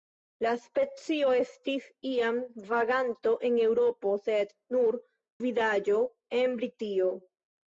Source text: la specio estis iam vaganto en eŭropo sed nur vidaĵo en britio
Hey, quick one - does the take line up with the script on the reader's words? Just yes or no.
yes